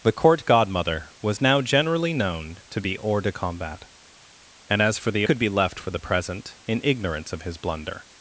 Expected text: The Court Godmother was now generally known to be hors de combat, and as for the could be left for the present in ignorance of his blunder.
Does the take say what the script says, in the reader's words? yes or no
yes